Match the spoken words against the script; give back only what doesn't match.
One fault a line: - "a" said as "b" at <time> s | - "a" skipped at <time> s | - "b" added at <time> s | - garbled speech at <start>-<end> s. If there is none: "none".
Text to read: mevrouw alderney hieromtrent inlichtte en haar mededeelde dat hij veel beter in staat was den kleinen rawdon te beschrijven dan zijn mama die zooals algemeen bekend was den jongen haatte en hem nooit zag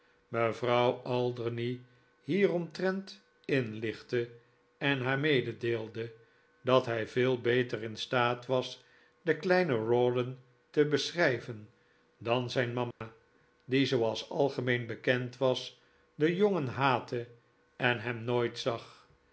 none